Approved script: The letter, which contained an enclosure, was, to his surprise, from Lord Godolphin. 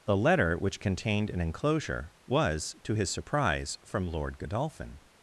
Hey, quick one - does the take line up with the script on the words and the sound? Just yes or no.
yes